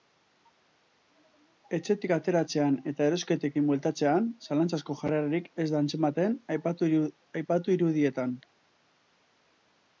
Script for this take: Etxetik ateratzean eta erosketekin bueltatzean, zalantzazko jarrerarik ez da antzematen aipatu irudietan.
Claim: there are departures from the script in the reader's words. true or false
false